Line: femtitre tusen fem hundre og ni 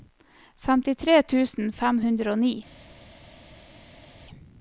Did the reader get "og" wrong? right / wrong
right